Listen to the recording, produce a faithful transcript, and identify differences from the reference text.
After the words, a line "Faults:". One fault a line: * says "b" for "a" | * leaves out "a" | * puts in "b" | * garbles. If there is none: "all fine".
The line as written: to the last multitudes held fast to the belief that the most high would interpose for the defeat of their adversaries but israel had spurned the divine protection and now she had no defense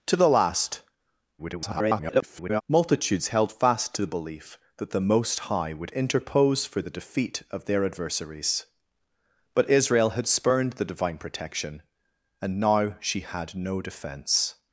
to the last [garbled] multitudes held fast to the belief that the most high would interpose for the defeat of their adversaries but israel had spurned the divine protection and now she had no defense
Faults:
* garbles